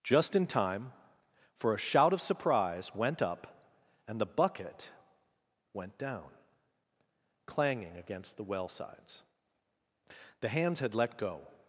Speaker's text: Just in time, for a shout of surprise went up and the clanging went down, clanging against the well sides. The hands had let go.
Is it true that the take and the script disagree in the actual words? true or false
true